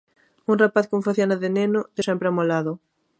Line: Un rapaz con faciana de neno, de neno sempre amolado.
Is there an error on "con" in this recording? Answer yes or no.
no